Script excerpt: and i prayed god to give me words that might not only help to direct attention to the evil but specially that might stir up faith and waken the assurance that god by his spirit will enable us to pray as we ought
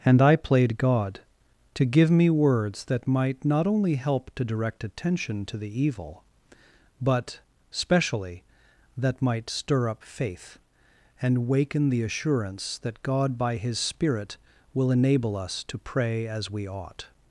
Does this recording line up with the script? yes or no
no